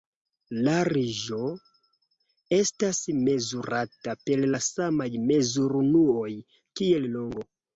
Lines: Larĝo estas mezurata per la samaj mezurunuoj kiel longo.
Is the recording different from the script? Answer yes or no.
no